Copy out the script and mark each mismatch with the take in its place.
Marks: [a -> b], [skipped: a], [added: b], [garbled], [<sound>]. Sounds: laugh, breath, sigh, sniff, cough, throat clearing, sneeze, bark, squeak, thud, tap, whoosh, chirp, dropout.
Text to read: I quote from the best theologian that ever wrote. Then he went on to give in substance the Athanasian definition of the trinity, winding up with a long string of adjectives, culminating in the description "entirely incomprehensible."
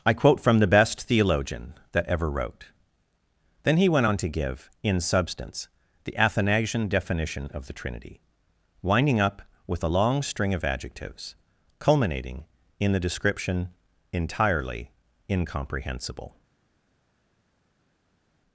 I quote from the best theologian that ever wrote. Then he went on to give in substance the Athanasian definition of the trinity, winding up with a long string of adjectives, culminating in the description "entirely incomprehensible."